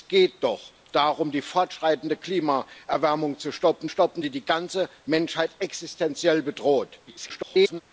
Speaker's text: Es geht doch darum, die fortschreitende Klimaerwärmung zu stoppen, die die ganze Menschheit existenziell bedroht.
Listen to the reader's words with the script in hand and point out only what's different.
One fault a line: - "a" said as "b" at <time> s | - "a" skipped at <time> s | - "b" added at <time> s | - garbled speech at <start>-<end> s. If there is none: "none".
- "stoppen" added at 3.9 s
- garbled speech at 7.1-7.8 s